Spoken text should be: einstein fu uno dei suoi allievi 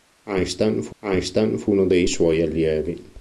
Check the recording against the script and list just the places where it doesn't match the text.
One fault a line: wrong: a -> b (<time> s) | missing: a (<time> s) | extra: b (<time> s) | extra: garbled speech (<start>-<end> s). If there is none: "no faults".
extra: einstein fu (1.0 s)